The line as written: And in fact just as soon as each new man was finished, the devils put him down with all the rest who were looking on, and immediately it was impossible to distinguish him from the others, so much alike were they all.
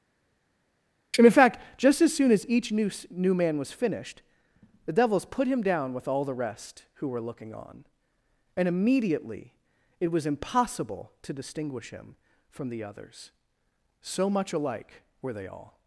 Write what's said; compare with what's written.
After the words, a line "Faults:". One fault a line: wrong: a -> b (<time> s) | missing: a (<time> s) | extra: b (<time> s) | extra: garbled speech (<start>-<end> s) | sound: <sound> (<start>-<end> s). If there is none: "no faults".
And in fact just as soon as each new new man was finished, the devils put him down with all the rest who were looking on, and immediately it was impossible to distinguish him from the others, so much alike were they all.
Faults:
extra: new (3.1 s)